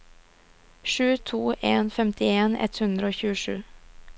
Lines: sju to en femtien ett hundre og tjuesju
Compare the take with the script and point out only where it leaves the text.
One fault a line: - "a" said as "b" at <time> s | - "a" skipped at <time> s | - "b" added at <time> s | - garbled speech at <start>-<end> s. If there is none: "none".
none